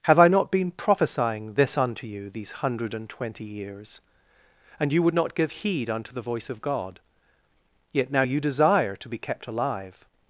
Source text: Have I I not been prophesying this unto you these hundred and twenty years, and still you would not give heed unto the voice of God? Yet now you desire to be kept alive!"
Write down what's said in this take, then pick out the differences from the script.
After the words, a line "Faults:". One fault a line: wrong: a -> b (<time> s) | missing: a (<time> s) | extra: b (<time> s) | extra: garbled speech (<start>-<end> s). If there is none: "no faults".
Have I not been prophesying this unto you these hundred and twenty years, and you would not give heed unto the voice of God? Yet now you desire to be kept alive!"
Faults:
missing: I (0.3 s)
missing: still (4.9 s)